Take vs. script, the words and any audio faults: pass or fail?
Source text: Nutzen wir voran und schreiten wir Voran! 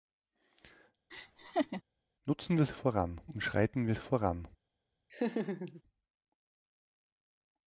fail